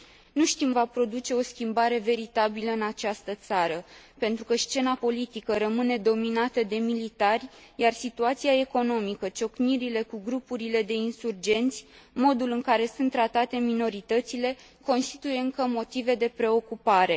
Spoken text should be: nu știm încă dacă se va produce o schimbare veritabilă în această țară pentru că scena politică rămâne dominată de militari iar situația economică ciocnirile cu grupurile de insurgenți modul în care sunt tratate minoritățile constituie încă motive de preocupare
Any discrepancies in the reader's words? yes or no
yes